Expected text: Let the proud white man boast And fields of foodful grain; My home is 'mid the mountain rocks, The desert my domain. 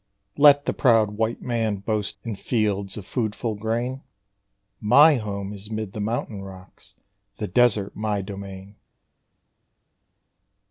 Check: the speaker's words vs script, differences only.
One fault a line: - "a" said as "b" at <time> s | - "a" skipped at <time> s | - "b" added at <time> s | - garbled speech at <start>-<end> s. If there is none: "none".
none